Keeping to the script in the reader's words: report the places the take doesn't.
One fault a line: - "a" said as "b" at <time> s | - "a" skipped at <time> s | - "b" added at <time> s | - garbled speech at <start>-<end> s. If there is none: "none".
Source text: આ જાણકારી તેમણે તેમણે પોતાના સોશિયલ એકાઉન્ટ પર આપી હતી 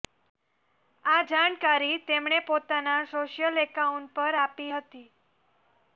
- "તેમણે" skipped at 2.4 s